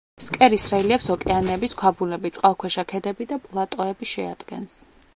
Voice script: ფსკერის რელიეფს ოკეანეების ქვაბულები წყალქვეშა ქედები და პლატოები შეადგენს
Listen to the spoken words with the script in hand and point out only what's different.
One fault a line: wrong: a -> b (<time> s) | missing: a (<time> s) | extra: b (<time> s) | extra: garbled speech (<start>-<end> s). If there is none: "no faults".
no faults